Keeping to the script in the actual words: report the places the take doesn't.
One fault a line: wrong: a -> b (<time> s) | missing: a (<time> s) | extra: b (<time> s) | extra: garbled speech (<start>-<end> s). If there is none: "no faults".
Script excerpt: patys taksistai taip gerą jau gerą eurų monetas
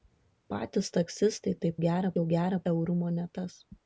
no faults